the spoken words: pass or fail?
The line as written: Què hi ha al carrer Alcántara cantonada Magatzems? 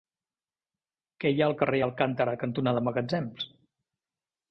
pass